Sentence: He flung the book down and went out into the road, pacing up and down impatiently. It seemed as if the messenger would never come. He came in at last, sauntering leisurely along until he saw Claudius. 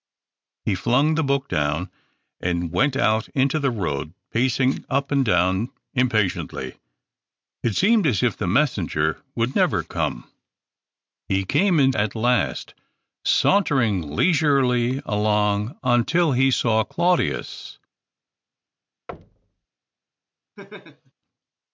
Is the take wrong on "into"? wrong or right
right